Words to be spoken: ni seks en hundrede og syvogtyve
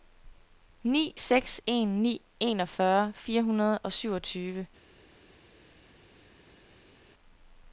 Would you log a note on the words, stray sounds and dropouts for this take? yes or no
yes